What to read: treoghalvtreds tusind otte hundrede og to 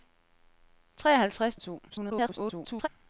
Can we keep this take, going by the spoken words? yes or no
no